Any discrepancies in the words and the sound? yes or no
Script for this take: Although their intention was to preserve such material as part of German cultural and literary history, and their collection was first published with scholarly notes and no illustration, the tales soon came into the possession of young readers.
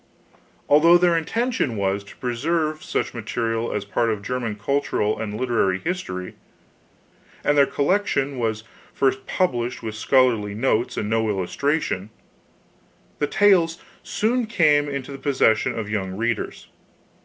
no